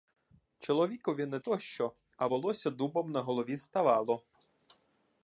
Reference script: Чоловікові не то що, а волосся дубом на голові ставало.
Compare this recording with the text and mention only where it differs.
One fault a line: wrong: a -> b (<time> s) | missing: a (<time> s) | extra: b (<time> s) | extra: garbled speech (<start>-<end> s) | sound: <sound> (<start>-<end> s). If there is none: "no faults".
no faults